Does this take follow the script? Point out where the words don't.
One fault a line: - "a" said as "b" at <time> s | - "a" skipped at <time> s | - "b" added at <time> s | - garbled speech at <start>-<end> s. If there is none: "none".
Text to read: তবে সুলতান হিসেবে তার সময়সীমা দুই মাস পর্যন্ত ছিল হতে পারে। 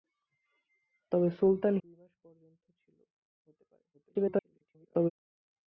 - "হিসেবে তার সময়সীমা" skipped at 1.8 s
- garbled speech at 3.9-5.1 s